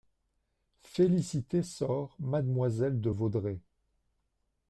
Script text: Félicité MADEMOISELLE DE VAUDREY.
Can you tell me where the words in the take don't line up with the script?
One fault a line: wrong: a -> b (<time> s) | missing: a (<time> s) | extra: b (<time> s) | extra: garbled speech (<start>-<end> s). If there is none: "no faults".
extra: sort (1.6 s)